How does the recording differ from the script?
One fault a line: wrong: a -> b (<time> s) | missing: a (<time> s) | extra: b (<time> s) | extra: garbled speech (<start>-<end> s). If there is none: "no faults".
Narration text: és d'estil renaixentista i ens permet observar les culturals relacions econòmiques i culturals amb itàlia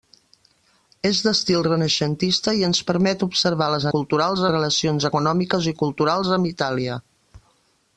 no faults